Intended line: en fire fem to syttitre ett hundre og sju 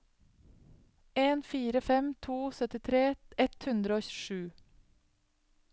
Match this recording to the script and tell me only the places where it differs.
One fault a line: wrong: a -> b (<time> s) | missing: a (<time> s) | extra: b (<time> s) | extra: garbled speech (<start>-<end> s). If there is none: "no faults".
no faults